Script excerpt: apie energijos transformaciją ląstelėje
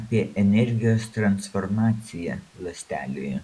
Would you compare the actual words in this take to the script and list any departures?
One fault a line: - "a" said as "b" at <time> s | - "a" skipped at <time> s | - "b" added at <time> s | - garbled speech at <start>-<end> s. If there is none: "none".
none